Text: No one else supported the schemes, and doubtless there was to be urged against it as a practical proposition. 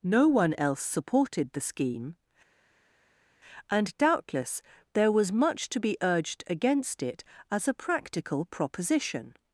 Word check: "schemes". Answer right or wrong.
wrong